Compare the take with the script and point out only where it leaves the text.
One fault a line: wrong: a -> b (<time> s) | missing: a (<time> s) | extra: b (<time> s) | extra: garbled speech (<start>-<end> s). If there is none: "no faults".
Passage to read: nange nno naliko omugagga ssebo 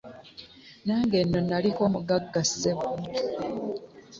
no faults